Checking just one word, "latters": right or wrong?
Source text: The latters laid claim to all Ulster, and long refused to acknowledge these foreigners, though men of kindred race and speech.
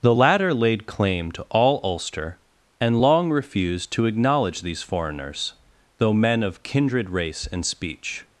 wrong